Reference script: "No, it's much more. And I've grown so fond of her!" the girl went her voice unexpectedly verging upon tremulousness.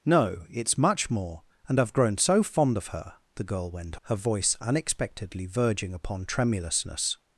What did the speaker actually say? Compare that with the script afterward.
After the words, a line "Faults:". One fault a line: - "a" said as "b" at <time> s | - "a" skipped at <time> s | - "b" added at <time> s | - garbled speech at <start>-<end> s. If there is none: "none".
"No, it's much more. And I've grown so fond of her!" the girl went her voice unexpectedly verging upon tremulousness.
Faults:
none